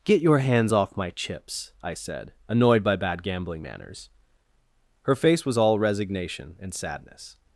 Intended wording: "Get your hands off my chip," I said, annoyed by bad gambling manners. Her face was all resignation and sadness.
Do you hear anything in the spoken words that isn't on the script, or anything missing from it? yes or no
yes